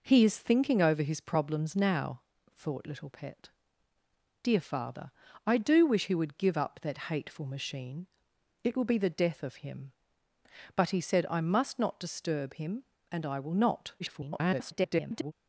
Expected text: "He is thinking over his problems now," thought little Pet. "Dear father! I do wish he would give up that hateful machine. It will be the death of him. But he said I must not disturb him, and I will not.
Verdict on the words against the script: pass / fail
fail